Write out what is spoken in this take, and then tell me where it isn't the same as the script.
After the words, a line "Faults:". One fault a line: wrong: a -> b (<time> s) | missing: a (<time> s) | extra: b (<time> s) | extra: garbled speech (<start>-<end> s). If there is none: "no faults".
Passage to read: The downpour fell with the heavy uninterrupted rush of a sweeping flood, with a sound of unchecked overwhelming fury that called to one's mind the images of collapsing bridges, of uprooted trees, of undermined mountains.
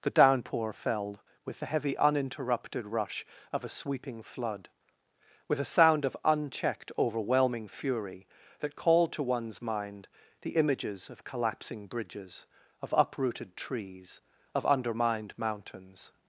The downpour fell with the heavy uninterrupted rush of a sweeping flood, with a sound of unchecked overwhelming fury that called to one's mind the images of collapsing bridges, of uprooted trees, of undermined mountains.
Faults:
no faults